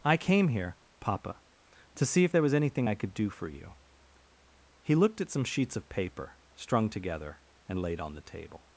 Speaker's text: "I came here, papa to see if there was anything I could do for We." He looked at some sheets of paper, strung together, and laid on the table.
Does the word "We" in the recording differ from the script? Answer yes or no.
yes